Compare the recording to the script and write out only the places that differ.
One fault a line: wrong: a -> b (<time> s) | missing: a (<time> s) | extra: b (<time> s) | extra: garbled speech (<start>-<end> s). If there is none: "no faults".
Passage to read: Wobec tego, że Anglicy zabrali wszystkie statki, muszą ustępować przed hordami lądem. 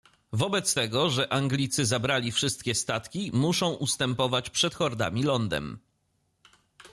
no faults